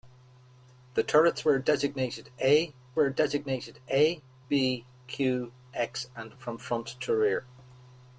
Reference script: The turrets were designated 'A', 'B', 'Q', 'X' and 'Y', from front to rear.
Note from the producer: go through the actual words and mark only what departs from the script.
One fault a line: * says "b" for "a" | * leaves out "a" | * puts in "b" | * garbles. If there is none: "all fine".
* puts in "were designated A"
* leaves out "Y"